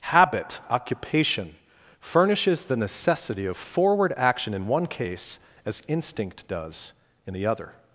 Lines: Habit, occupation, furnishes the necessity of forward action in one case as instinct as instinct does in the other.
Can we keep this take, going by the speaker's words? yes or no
no